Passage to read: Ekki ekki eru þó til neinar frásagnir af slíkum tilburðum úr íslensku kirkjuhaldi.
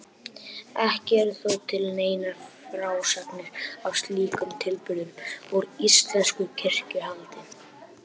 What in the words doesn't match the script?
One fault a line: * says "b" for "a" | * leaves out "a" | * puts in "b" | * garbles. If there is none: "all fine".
* leaves out "ekki"